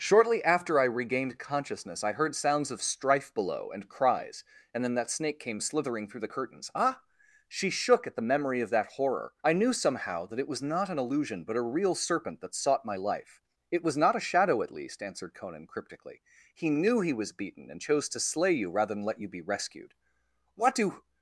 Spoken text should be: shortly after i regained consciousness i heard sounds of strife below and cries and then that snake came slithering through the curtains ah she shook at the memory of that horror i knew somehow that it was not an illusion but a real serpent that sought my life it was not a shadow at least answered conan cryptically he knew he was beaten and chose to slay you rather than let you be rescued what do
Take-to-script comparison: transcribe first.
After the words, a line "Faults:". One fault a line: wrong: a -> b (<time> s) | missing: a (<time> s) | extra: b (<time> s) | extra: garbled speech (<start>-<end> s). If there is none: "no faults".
shortly after i regained consciousness i heard sounds of strife below and cries and then that snake came slithering through the curtains ah she shook at the memory of that horror i knew somehow that it was not an illusion but a real serpent that sought my life it was not a shadow at least answered conan cryptically he knew he was beaten and chose to slay you rather than let you be rescued what do
Faults:
no faults